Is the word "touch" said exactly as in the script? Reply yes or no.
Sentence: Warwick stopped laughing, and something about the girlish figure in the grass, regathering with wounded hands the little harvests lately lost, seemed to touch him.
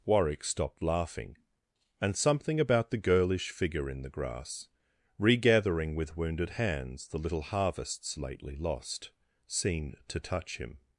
yes